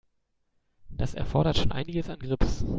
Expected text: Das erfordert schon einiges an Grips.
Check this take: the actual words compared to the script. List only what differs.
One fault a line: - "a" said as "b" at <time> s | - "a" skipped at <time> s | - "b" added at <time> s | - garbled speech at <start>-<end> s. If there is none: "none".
none